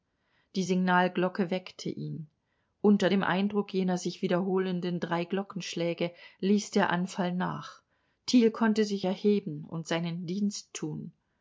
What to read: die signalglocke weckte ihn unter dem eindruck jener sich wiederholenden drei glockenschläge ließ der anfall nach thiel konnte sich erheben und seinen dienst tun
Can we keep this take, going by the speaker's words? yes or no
yes